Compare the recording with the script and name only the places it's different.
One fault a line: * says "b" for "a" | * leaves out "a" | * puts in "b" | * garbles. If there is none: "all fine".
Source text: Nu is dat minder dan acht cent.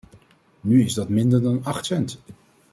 all fine